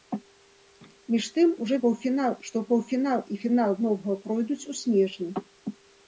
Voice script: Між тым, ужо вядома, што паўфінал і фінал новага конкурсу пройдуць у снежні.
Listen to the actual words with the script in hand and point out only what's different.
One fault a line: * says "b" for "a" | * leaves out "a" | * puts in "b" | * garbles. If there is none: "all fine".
* says "паўфінал" for "вядома"
* leaves out "конкурсу"